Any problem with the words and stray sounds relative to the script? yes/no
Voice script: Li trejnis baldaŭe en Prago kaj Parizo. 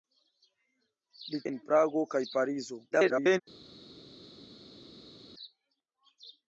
yes